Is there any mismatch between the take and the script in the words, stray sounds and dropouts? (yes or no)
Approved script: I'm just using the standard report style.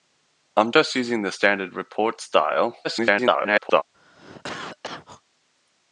yes